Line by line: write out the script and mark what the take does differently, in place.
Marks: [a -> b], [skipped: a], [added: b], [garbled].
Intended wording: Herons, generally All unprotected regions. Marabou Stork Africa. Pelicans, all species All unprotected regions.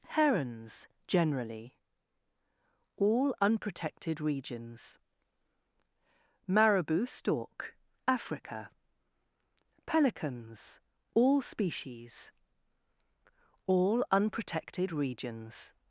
Herons, generally All unprotected regions. Marabou Stork Africa. Pelicans, all species All unprotected regions.